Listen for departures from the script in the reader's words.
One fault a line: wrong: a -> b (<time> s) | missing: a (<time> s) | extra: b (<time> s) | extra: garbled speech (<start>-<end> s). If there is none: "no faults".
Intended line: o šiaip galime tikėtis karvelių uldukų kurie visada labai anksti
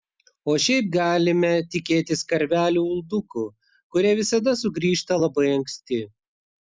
extra: sugrįžta (4.6 s)